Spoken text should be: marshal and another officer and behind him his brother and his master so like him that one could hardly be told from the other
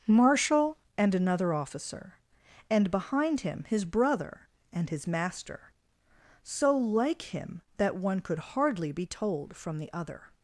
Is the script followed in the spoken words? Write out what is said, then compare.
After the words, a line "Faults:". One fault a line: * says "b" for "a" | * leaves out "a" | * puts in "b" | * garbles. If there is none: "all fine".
marshal and another officer and behind him his brother and his master so like him that one could hardly be told from the other
Faults:
all fine